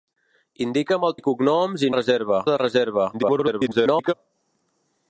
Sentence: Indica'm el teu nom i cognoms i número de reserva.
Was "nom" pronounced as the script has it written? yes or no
no